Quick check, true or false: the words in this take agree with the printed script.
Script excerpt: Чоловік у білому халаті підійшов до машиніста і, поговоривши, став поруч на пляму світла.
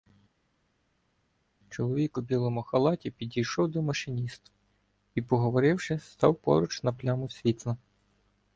true